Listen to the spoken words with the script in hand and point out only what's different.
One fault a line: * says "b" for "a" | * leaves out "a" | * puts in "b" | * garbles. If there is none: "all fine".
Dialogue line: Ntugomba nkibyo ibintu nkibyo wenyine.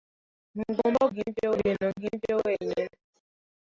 all fine